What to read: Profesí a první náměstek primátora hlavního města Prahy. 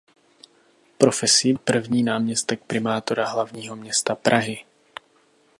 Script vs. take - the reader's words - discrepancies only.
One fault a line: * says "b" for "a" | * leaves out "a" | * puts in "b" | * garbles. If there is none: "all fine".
all fine